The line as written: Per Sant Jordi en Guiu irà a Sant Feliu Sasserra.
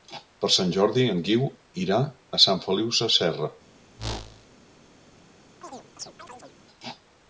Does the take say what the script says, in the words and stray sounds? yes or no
no